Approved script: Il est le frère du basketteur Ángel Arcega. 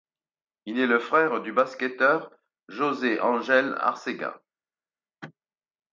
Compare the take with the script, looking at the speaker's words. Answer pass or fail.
fail